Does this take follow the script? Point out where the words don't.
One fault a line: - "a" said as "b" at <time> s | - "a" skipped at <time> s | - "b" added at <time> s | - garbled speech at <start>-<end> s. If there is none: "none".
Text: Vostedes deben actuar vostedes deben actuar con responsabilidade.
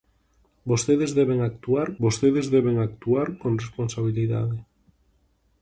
none